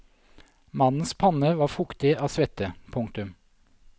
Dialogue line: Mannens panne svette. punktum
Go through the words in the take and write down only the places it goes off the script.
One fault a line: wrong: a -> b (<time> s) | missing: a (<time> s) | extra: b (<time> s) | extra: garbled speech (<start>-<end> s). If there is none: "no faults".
extra: var fuktig av (1.6 s)